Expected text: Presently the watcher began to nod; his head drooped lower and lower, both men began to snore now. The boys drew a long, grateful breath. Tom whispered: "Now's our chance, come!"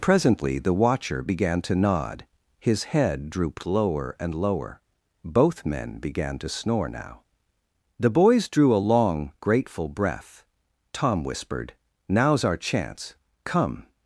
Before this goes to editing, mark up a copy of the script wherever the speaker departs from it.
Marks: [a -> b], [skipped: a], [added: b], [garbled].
Presently the watcher began to nod; his head drooped lower and lower, both men began to snore now. The boys drew a long, grateful breath. Tom whispered: "Now's our chance, come!"